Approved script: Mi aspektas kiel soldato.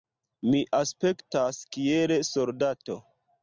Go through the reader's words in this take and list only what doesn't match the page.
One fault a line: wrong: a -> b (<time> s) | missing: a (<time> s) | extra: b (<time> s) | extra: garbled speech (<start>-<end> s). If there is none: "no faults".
no faults